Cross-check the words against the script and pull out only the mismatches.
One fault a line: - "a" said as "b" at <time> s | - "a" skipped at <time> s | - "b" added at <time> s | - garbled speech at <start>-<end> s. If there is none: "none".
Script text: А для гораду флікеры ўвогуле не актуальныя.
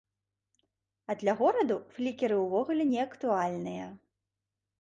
none